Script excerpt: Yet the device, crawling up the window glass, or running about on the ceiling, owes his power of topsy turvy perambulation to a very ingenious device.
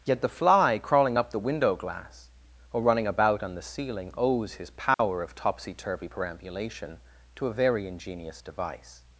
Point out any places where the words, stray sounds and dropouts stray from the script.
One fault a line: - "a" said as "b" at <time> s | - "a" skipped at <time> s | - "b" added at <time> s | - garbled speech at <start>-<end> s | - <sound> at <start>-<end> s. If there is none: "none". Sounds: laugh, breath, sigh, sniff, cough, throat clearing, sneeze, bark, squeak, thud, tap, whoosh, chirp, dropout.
- "device" said as "fly" at 0.3 s
- dropout at 4.9-5.0 s